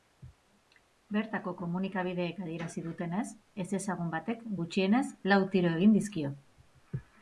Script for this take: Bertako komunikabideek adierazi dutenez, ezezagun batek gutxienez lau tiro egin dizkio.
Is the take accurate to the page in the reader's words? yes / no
yes